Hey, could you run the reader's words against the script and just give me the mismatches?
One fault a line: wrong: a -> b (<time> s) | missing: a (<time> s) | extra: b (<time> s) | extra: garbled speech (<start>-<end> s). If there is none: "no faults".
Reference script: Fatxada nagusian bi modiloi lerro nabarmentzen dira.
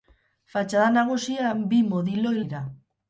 missing: lerro nabarmentzen (2.4 s)